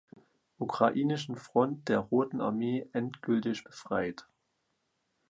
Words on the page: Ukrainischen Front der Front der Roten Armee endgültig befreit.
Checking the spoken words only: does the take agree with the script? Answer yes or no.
no